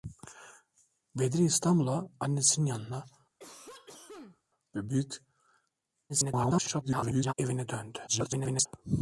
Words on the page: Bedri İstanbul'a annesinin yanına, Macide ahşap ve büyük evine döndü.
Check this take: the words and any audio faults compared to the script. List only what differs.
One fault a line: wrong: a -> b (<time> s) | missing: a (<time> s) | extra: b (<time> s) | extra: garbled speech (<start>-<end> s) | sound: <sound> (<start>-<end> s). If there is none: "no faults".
missing: Macide ahşap (3.0 s)
sound: cough (3.4-4.4 s)
extra: garbled speech (6.1-7.3 s)
extra: garbled speech (8.1-8.7 s)